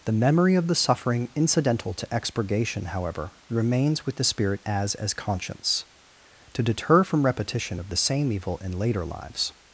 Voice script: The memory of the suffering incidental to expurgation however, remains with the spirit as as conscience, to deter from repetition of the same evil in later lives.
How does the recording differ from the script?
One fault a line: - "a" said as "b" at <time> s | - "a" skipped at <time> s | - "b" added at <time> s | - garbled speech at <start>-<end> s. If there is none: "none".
none